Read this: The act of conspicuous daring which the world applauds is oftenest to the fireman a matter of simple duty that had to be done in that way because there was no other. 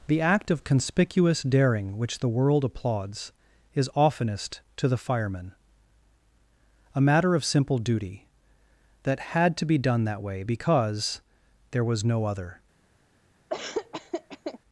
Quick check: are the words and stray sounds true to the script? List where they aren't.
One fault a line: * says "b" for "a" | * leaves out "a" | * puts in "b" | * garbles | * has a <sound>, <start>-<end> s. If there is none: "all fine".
* leaves out "in"
* has a laugh, 13.5-14.6 s